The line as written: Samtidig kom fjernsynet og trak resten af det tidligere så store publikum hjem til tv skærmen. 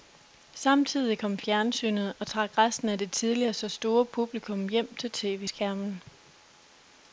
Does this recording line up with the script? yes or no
yes